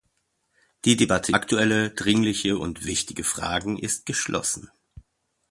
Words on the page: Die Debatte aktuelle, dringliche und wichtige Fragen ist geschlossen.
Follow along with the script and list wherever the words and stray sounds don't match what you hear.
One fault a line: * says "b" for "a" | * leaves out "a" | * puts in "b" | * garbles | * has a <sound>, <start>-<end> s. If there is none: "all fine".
all fine